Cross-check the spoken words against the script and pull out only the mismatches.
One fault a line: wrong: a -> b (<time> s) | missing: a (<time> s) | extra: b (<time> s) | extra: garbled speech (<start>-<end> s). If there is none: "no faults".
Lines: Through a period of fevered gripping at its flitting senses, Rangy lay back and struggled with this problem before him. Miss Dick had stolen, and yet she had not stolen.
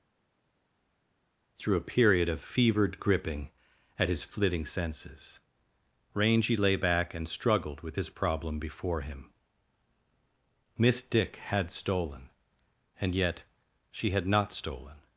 wrong: its -> his (4.1 s)